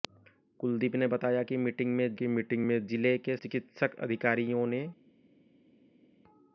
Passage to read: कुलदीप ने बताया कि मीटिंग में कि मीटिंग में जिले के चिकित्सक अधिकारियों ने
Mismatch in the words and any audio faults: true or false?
false